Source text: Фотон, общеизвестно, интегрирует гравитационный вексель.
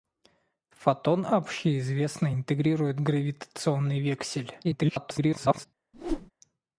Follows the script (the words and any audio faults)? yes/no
no